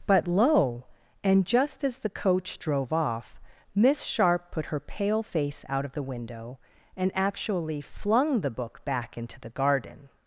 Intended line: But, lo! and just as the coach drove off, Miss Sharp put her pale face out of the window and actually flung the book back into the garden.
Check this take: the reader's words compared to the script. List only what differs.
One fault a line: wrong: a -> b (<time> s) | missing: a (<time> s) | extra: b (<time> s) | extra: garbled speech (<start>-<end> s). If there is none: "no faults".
no faults